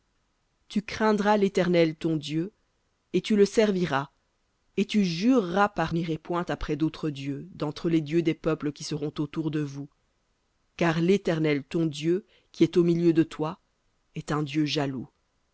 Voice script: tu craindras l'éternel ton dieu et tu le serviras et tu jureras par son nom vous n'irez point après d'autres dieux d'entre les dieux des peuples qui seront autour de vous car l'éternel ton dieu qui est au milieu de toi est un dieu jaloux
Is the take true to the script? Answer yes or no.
no